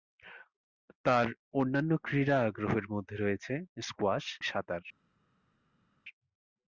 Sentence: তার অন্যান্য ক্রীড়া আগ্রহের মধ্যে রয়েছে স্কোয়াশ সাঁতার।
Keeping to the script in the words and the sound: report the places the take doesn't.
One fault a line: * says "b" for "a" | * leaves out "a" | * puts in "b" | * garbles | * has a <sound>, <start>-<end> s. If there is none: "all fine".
all fine